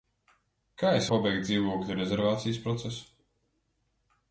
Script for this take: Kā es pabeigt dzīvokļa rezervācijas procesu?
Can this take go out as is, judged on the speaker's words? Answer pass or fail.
pass